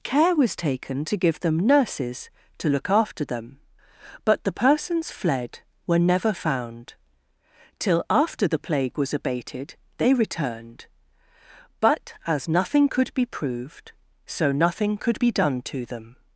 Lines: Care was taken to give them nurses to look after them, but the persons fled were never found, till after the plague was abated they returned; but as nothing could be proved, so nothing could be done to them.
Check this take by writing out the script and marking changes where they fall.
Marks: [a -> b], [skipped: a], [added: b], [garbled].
Care was taken to give them nurses to look after them, but the persons fled were never found, till after the plague was abated they returned; but as nothing could be proved, so nothing could be done to them.